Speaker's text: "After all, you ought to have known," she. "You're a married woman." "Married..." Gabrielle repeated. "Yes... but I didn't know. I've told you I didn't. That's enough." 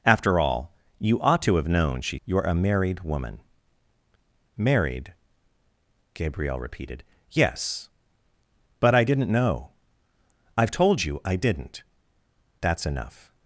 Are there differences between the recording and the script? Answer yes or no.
no